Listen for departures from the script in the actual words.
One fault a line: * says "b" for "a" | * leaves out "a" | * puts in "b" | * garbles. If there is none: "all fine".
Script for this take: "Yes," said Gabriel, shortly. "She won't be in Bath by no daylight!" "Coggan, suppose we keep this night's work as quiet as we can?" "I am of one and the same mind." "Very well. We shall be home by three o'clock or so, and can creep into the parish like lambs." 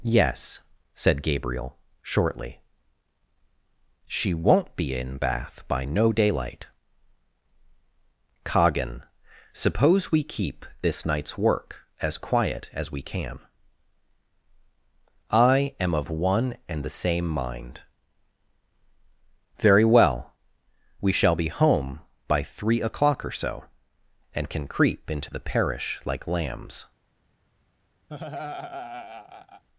all fine